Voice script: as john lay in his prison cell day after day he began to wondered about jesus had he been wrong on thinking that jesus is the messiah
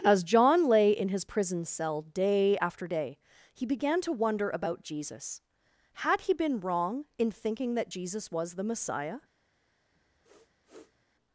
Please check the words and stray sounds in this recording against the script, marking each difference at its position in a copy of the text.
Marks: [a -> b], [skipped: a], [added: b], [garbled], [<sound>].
as john lay in his prison cell day after day he began to [wondered -> wonder] about jesus had he been wrong [on -> in] thinking that jesus [is -> was] the messiah [sniff]